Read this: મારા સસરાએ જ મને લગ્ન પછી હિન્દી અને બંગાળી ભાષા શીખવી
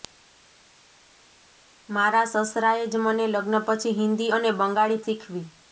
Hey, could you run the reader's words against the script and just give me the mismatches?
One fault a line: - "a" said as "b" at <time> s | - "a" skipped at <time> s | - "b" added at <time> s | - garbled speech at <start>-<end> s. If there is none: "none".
- "ભાષા" skipped at 5.0 s